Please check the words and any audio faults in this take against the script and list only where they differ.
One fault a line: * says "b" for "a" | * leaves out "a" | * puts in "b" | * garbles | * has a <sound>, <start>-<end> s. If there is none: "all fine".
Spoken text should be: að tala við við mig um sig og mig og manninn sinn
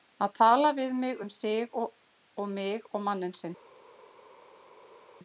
* leaves out "við"